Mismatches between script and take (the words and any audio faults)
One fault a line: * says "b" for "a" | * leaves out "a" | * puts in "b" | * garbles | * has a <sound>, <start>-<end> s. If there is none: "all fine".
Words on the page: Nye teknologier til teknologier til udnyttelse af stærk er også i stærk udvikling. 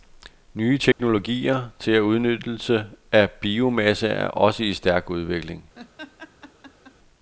* has a dropout, 0.9-1.0 s
* leaves out "teknologier til"
* says "biomasse" for "stærk"
* has a laugh, 5.8-7.0 s